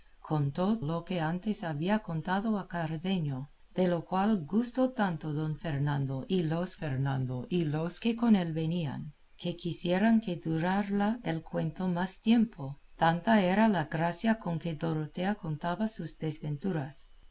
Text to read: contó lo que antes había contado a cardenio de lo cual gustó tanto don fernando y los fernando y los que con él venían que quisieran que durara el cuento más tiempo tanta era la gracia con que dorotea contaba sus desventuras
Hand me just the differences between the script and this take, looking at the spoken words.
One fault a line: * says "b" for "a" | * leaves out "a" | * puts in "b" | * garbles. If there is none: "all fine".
all fine